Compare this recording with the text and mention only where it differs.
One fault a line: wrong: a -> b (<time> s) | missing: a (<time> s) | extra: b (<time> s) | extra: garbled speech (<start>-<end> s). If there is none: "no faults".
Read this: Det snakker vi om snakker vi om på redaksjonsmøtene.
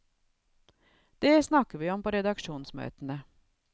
missing: snakker vi om (2.0 s)